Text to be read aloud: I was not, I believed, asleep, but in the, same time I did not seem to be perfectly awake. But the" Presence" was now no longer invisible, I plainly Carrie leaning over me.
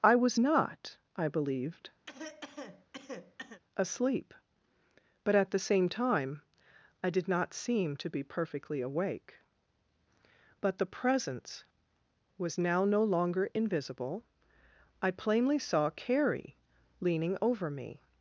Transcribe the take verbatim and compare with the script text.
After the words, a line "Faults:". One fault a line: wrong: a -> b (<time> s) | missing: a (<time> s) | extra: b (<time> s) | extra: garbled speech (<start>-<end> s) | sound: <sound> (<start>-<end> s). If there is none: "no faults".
I was not, I believed, asleep, but at the, same time I did not seem to be perfectly awake. But the" Presence" was now no longer invisible, I plainly saw Carrie leaning over me.
Faults:
sound: cough (2.1-3.6 s)
wrong: in -> at (5.4 s)
extra: saw (15.6 s)